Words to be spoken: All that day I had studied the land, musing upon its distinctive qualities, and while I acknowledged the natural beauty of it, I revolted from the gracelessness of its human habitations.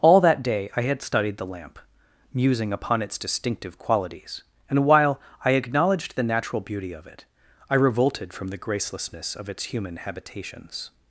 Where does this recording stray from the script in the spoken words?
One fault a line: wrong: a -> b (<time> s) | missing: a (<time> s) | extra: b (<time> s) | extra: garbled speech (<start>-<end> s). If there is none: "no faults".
wrong: land -> lamp (1.4 s)